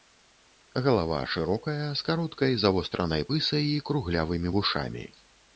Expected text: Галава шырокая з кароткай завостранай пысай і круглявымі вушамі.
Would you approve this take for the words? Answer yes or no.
yes